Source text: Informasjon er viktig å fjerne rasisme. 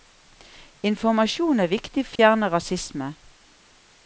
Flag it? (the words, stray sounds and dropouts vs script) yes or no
yes